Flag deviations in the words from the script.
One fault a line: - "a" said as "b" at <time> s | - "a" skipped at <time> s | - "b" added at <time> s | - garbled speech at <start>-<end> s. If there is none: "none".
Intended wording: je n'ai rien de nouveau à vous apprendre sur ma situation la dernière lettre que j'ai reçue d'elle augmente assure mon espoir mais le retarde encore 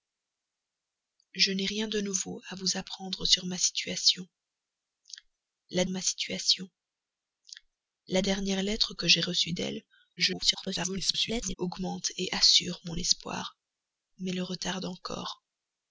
- "ma situation la" added at 5.9 s
- garbled speech at 10.2-11.6 s